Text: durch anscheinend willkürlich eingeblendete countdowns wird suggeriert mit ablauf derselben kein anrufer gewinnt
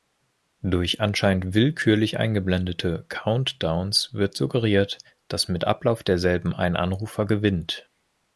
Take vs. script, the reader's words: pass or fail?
fail